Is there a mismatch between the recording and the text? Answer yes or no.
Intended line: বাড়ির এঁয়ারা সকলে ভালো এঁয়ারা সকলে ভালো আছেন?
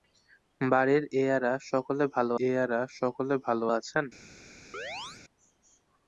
no